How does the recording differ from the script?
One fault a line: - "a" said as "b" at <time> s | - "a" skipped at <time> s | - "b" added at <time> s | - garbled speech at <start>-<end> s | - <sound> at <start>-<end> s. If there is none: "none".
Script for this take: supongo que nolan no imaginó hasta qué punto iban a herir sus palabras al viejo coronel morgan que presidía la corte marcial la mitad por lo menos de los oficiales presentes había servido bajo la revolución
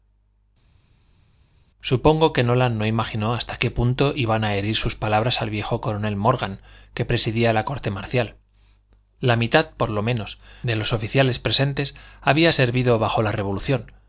none